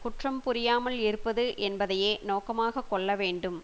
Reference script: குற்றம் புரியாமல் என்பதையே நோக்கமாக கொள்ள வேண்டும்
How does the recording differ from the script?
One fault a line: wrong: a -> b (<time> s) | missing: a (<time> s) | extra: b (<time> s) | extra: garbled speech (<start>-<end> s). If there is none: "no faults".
extra: இருப்பது (1.0 s)